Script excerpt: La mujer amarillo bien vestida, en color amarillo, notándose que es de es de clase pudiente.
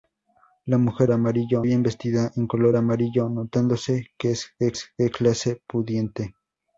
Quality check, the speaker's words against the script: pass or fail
pass